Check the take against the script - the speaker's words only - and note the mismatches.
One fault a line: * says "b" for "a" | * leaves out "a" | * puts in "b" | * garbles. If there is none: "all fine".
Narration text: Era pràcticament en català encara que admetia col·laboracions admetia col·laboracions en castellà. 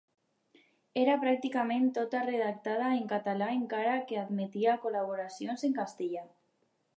* puts in "tota redactada"
* leaves out "admetia col·laboracions"